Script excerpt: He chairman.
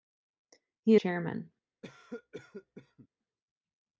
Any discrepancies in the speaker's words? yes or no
no